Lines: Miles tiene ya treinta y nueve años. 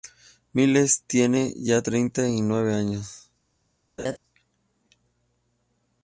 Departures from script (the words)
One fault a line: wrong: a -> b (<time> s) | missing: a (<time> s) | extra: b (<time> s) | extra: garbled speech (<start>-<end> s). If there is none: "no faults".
no faults